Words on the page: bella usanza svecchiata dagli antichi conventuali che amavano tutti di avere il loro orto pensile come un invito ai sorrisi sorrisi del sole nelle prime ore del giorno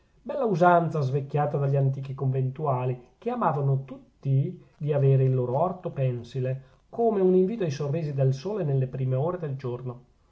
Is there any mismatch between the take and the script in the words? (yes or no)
yes